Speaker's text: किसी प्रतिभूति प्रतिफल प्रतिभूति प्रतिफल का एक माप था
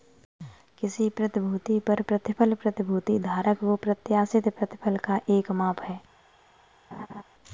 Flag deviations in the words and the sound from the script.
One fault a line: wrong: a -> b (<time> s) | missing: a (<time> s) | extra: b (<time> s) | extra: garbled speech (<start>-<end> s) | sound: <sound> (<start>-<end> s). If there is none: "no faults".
extra: पर (1.8 s)
extra: धारक को प्रत्याशित (3.2 s)
wrong: था -> है (5.8 s)
sound: laugh (6.9-7.2 s)